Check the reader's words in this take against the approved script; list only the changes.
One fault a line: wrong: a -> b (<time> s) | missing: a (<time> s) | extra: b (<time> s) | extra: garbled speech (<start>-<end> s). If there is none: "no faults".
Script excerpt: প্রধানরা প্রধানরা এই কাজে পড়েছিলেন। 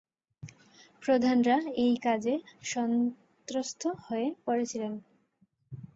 missing: প্রধানরা (1.6 s)
extra: সন্ত্রস্ত হয়ে (2.6 s)